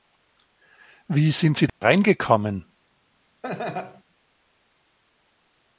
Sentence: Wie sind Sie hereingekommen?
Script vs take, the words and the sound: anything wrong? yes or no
yes